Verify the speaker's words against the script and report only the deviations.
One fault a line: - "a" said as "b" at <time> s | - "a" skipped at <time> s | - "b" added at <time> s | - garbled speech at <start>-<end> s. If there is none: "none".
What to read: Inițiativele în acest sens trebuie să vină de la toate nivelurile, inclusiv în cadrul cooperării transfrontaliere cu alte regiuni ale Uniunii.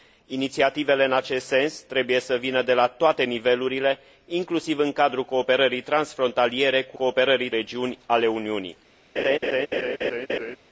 - "alte" said as "cooperării" at 6.9 s